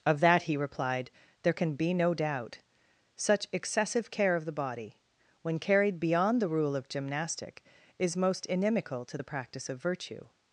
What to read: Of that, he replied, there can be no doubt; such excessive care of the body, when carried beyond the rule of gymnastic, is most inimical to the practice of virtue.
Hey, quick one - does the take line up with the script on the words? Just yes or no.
yes